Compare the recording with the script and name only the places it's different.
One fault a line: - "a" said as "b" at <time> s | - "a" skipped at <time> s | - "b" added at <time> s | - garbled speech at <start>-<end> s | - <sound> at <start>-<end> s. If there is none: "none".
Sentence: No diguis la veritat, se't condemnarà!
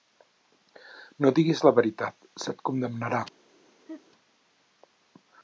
- laugh at 3.9-4.0 s